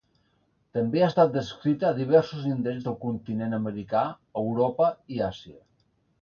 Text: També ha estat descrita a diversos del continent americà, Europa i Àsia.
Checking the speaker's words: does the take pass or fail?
fail